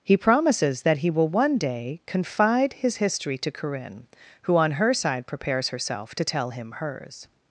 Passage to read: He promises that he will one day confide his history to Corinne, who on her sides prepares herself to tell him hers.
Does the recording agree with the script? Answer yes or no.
no